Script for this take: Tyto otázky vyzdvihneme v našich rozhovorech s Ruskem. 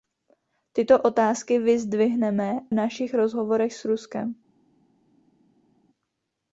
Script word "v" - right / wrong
wrong